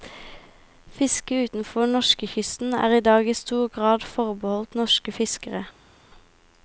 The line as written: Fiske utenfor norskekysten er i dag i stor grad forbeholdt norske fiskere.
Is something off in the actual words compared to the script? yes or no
no